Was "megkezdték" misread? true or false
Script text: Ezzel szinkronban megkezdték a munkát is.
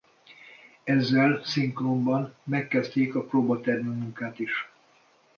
false